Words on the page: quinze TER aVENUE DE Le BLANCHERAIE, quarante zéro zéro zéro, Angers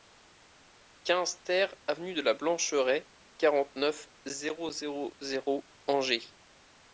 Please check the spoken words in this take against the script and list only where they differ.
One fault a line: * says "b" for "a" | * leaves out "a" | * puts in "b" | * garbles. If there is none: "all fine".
* says "LA" for "Le"
* puts in "neuf"